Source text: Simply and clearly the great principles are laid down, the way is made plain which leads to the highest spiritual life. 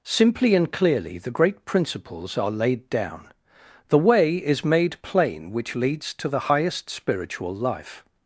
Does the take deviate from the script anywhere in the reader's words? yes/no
no